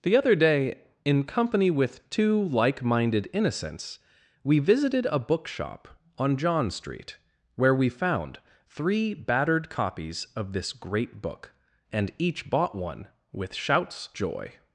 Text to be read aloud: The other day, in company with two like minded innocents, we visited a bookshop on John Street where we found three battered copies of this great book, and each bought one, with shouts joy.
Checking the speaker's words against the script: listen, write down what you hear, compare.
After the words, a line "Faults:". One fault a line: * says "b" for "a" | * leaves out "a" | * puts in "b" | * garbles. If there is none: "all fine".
The other day, in company with two like minded innocents, we visited a bookshop on John Street where we found three battered copies of this great book, and each bought one, with shouts joy.
Faults:
all fine